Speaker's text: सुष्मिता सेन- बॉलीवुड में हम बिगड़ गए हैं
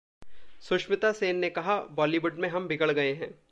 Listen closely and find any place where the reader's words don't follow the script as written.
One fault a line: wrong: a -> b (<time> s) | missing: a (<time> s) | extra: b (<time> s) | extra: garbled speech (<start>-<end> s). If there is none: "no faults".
extra: ने कहा (1.4 s)